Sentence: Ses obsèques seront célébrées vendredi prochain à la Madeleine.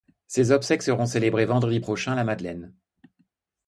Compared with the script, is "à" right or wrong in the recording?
right